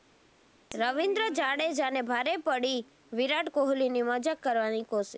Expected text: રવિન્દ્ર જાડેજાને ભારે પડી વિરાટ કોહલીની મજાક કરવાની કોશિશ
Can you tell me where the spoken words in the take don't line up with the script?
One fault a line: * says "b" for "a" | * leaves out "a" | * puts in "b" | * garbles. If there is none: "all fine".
all fine